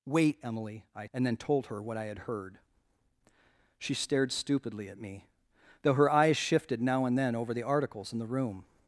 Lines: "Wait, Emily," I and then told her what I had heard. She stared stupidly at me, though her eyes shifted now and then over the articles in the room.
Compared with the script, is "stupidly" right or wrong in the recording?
right